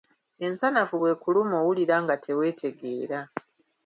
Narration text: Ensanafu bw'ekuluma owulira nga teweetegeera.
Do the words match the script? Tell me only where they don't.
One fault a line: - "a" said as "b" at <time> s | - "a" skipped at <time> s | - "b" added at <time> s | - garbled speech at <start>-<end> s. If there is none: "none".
none